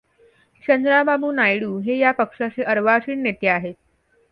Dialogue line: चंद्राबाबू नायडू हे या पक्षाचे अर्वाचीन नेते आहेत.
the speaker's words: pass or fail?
pass